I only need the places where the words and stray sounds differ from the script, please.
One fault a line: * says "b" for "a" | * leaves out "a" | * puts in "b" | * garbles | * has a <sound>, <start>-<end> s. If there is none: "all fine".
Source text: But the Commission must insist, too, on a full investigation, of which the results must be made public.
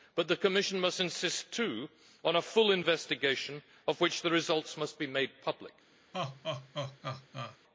* has a laugh, 6.1-7.6 s